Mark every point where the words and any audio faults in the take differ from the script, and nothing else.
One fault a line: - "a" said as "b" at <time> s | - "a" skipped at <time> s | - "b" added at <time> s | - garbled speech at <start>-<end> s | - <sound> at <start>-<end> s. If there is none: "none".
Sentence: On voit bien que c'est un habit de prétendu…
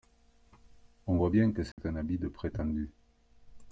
- dropout at 1.7-1.8 s